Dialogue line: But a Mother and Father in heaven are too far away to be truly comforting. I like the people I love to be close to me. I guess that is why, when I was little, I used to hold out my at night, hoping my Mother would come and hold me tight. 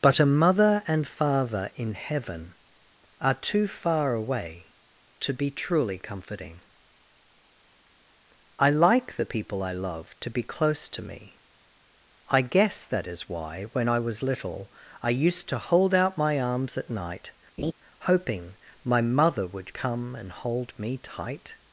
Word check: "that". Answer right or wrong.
right